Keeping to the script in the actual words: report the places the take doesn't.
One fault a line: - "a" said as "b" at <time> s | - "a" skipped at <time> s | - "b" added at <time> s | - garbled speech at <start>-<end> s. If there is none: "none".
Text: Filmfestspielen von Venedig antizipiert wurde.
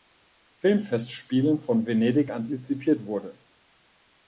none